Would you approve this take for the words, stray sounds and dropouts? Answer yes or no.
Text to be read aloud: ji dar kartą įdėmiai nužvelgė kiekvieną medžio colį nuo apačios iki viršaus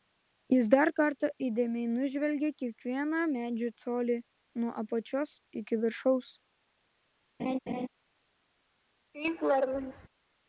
no